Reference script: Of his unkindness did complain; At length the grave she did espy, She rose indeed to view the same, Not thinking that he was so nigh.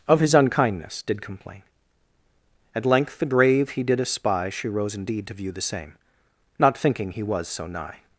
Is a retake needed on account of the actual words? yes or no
yes